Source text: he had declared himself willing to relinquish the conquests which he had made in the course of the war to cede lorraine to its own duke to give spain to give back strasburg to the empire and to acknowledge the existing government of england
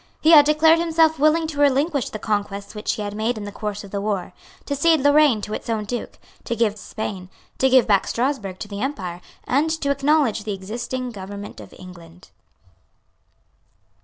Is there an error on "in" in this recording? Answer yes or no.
no